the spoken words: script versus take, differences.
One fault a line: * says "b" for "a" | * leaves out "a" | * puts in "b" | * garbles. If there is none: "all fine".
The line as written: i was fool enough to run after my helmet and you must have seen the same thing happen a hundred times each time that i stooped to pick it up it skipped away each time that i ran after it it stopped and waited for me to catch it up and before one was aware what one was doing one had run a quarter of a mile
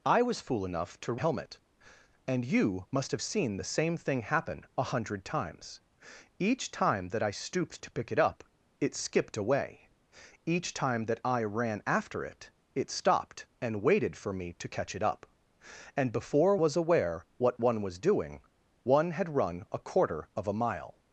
* leaves out "run after my"
* leaves out "one"